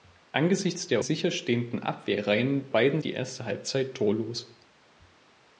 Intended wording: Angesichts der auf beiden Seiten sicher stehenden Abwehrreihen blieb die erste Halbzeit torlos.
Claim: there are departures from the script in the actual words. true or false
true